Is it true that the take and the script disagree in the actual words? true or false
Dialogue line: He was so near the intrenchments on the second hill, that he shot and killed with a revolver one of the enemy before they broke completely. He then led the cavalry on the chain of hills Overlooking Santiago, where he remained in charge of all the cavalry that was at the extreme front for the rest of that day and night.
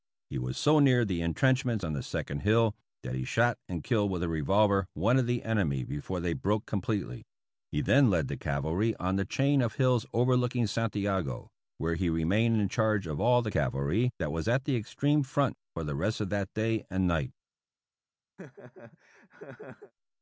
false